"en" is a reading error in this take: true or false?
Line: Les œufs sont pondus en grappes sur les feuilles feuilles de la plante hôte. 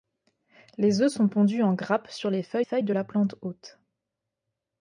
false